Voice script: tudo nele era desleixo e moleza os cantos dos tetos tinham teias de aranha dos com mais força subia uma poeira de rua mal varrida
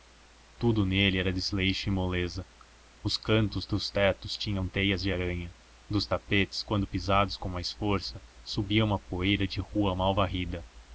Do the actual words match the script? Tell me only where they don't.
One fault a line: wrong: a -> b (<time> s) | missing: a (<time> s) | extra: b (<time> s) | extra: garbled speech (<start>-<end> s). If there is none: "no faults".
extra: tapetes quando pisados (6.1 s)